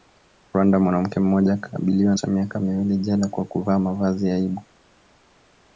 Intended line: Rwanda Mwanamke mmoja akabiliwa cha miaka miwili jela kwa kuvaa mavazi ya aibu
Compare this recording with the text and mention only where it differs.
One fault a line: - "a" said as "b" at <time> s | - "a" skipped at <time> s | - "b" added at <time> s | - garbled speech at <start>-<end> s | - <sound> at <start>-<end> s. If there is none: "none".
none